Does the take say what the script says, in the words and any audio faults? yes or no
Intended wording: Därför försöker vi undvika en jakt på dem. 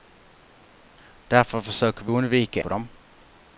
no